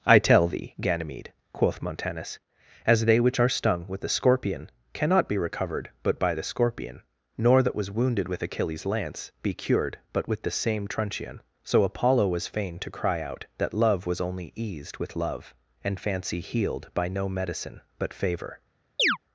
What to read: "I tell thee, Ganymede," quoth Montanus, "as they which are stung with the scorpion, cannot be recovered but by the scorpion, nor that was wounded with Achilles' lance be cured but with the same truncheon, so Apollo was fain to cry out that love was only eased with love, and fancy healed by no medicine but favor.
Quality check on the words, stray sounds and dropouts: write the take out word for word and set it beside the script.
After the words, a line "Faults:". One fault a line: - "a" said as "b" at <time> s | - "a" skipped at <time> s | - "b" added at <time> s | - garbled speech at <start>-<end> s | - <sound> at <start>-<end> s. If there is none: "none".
"I tell thee, Ganymede," quoth Montanus, "as they which are stung with the scorpion, cannot be recovered but by the scorpion, nor that was wounded with Achilles' lance be cured but with the same truncheon, so Apollo was fain to cry out that love was only eased with love, and fancy healed by no medicine but favor.
Faults:
- chirp at 19.0-19.2 s